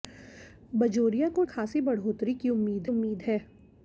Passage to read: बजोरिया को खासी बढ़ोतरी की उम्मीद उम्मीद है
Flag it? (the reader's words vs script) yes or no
no